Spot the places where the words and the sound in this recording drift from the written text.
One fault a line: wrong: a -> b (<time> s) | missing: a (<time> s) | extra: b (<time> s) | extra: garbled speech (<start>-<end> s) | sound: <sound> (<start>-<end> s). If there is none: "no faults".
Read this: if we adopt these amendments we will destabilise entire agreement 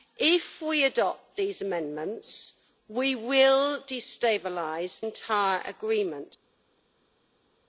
no faults